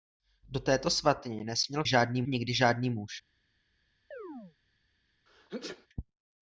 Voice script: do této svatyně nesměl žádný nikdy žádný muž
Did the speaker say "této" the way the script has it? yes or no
yes